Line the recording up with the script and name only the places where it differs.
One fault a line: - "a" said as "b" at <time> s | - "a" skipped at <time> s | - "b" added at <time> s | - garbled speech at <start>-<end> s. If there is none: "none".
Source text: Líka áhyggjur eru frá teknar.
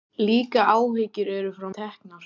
none